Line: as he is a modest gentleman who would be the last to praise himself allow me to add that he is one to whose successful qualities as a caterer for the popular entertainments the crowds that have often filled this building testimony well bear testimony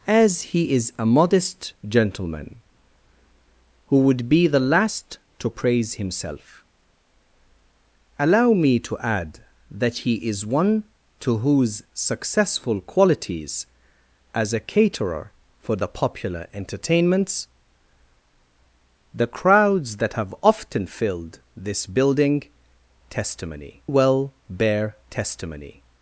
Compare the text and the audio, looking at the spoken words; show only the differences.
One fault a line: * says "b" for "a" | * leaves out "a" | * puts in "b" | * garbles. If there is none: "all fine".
all fine